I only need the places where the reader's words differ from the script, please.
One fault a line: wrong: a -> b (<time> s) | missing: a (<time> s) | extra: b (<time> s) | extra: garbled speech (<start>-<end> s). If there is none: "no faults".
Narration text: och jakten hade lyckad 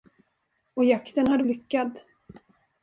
no faults